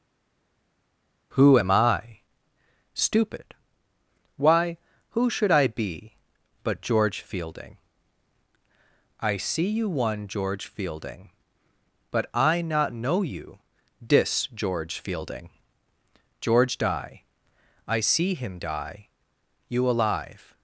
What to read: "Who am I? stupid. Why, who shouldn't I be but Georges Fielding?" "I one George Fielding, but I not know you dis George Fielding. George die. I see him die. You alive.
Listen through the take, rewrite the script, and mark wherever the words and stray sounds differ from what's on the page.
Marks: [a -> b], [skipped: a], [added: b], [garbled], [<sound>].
"Who am I? stupid. Why, who [shouldn't -> should] I be but [Georges -> George] Fielding?" "I [added: see you] one George Fielding, but I not know you dis George Fielding. George die. I see him die. You alive.